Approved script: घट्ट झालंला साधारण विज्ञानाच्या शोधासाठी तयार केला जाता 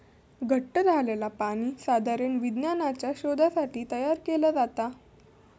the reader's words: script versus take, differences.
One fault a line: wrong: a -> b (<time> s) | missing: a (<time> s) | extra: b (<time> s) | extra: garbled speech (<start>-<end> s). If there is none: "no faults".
extra: पाणी (1.4 s)